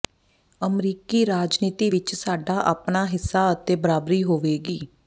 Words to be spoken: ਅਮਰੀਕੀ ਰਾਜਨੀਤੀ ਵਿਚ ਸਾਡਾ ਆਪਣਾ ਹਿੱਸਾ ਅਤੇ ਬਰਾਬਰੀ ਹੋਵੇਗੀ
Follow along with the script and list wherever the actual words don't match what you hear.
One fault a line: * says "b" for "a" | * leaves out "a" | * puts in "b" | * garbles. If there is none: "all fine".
all fine